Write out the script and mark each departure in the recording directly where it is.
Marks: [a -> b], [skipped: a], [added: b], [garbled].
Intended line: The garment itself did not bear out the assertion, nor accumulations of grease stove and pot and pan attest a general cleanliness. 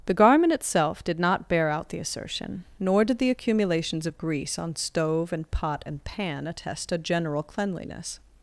The garment itself did not bear out the assertion, nor [added: did the] accumulations of grease [added: on] stove and pot and pan attest a general cleanliness.